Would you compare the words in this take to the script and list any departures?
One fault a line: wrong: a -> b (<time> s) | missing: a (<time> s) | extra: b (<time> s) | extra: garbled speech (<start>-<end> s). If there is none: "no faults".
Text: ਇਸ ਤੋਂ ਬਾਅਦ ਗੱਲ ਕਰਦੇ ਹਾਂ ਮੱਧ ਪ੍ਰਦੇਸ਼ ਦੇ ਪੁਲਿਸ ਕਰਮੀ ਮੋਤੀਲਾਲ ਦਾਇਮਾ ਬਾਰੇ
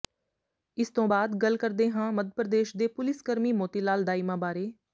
no faults